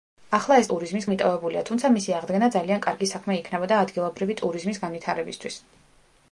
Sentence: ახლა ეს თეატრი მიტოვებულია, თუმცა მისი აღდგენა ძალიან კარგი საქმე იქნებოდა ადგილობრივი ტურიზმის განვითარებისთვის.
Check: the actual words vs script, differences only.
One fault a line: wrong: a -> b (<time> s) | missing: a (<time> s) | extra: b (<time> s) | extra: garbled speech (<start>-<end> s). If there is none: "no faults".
wrong: თეატრი -> ტურიზმის (0.7 s)